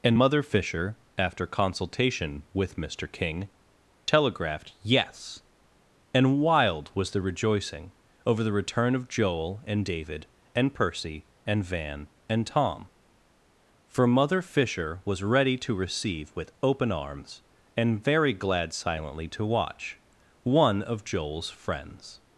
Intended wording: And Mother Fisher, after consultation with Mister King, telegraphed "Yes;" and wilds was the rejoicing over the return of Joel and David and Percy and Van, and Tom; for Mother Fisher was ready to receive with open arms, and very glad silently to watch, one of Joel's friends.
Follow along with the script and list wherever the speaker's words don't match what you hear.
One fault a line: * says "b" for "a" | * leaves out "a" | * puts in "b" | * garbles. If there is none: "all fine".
* says "wild" for "wilds"